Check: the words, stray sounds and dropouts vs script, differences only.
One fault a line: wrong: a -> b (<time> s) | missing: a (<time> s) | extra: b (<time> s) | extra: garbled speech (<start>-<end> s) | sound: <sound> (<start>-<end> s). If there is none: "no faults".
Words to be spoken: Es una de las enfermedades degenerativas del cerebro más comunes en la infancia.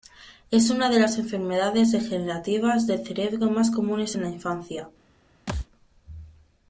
sound: thud (5.5-5.7 s)